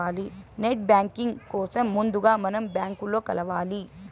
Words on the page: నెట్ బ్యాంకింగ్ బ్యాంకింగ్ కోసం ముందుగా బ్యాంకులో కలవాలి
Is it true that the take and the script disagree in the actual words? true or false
true